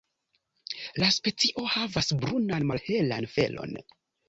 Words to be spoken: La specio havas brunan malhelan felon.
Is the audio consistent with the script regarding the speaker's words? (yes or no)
yes